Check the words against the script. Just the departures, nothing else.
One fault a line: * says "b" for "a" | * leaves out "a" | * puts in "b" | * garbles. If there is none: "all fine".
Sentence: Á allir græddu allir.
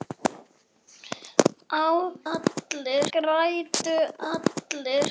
all fine